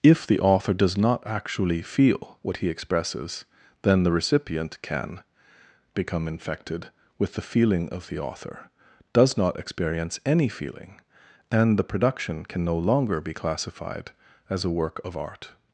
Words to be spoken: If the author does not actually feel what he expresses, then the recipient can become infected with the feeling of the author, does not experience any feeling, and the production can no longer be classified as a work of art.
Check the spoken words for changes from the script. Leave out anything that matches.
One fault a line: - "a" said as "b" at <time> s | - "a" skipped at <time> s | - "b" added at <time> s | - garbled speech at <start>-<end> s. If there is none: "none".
none